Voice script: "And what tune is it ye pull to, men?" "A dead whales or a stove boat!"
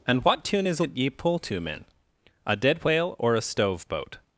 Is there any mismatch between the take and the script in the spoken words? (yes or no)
yes